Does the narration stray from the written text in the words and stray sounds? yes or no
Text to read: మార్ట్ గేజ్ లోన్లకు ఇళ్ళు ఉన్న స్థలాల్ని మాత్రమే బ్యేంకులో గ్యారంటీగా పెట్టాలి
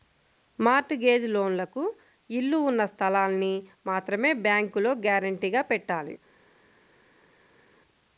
no